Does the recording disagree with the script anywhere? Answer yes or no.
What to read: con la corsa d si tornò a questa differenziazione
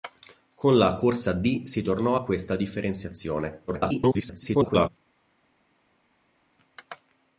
yes